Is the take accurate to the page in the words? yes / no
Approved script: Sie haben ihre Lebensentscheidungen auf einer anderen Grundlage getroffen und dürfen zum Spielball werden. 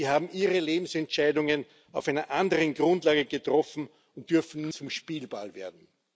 yes